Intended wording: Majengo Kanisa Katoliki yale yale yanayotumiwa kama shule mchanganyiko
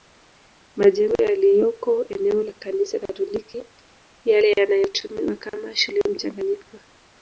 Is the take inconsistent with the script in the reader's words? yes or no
yes